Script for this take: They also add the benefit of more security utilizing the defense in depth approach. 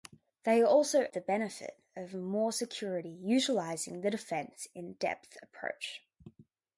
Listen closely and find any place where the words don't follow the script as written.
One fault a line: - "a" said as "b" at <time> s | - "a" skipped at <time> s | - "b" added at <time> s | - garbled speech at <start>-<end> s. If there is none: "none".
- "add" skipped at 1.0 s